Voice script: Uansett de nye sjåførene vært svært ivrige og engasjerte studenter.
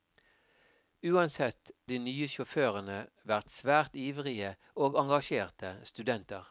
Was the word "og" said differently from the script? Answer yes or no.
no